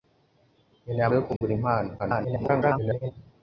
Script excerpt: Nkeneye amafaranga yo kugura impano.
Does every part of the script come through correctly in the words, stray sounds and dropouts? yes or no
no